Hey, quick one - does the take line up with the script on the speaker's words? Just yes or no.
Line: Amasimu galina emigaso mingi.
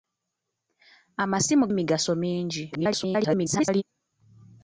no